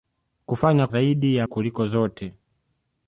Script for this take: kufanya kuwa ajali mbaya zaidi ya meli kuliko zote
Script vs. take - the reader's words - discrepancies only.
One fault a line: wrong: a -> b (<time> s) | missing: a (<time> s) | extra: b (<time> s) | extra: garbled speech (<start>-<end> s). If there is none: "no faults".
missing: kuwa ajali mbaya (0.9 s)
missing: meli (1.5 s)